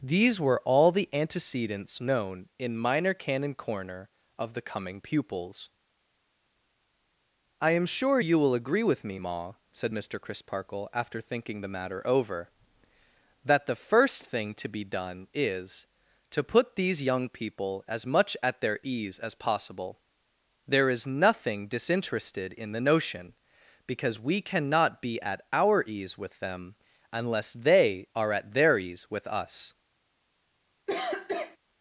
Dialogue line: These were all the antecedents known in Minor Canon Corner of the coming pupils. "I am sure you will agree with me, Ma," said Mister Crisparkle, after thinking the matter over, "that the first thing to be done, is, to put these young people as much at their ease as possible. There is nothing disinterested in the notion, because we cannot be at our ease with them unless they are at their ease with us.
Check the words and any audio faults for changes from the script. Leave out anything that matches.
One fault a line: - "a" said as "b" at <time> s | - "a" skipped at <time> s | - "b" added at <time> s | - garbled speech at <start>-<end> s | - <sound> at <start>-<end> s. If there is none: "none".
- cough at 30.9-31.6 s